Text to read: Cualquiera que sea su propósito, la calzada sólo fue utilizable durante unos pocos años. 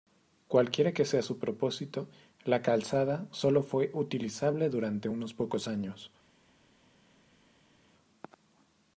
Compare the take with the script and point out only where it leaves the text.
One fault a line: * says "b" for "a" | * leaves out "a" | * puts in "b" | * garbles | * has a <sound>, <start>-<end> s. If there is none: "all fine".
all fine